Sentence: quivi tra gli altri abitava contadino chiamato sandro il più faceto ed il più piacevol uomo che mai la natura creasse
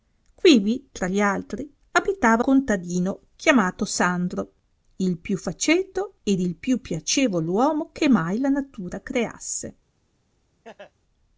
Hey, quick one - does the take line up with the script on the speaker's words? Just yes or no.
yes